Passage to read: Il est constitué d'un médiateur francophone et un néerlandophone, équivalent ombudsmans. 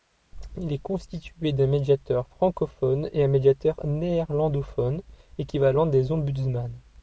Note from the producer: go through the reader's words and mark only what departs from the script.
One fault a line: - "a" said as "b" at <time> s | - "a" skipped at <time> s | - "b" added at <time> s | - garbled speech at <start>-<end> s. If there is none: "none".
- "médiateur" added at 3.3 s
- "des" added at 5.9 s